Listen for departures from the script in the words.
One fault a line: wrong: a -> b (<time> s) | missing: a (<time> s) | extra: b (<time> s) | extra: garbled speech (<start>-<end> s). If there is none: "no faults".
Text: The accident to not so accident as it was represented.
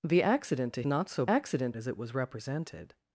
no faults